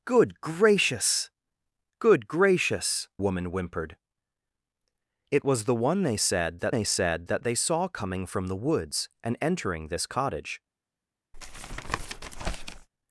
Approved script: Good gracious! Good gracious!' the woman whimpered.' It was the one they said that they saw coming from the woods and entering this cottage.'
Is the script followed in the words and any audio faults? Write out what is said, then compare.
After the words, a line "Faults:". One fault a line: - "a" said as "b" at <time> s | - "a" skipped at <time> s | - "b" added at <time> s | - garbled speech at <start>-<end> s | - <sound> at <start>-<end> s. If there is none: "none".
Good gracious! Good gracious!' woman whimpered.' It was the one they said that they said that they saw coming from the woods and entering this cottage.'
Faults:
- "the" skipped at 3.1 s
- "said that they" added at 6.8 s
- tap at 11.3-12.9 s